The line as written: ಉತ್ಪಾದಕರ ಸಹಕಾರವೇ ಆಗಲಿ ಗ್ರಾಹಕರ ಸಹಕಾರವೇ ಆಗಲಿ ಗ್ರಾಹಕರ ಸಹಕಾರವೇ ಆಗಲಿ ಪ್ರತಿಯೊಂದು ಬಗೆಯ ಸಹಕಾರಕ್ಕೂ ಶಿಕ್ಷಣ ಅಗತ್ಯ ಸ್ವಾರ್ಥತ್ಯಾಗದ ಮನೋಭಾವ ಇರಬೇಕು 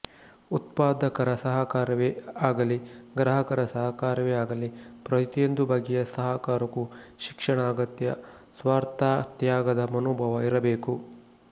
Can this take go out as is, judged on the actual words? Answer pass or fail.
fail